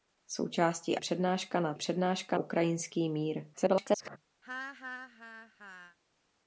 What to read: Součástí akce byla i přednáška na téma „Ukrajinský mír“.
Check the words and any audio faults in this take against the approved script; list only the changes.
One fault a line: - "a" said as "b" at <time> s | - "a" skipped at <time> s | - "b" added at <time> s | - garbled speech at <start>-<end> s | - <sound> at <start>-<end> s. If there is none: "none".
- "akce byla i" skipped at 1.0 s
- "téma" said as "přednáška" at 1.7 s
- garbled speech at 3.5-4.2 s
- laugh at 4.4-6.0 s